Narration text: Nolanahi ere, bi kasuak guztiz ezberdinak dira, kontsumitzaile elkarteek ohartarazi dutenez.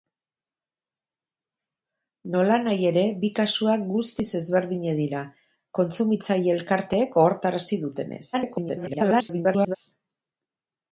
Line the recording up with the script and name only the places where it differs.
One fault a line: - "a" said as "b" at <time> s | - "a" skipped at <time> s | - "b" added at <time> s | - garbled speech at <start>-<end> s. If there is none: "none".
- garbled speech at 8.3-9.8 s